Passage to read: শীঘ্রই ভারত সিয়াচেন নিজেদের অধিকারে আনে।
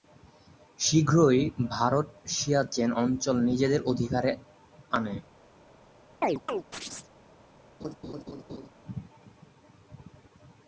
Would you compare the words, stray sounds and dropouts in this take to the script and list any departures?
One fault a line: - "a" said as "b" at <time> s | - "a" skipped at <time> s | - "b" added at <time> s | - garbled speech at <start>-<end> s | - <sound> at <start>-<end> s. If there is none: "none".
- "অঞ্চল" added at 3.0 s
- chirp at 6.2-7.1 s
- laugh at 7.8-8.7 s